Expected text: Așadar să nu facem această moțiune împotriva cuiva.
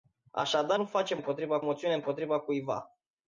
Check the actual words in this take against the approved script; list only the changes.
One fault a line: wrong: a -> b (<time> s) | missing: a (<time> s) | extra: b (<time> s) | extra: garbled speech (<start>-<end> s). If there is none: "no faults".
missing: să (0.8 s)
wrong: această -> împotriva (1.1 s)